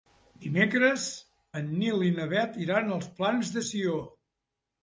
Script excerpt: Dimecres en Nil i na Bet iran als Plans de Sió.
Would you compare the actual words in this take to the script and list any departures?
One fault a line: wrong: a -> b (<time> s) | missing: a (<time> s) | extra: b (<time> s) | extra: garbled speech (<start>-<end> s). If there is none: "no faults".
no faults